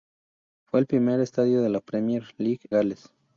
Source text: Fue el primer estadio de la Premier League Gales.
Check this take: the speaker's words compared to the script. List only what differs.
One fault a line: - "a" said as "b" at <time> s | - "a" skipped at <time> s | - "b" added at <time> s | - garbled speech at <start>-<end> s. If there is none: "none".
none